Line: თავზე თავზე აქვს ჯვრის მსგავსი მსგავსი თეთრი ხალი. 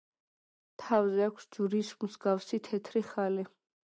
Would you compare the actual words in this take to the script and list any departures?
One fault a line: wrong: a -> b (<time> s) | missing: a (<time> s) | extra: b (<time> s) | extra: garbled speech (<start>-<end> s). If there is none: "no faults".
missing: თავზე (1.2 s)
missing: მსგავსი (2.6 s)